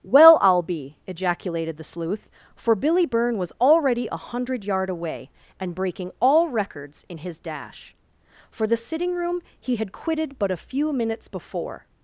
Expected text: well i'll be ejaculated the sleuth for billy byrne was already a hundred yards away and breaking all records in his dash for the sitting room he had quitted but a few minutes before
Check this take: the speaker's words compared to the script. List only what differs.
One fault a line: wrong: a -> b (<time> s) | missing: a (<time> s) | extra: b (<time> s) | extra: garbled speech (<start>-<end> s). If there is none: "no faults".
wrong: yards -> yard (4.7 s)